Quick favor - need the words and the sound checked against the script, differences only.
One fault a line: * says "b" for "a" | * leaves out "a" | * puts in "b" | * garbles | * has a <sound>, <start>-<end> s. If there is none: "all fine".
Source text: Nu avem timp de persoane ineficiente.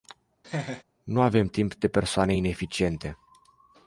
* has a laugh, 0.4-0.8 s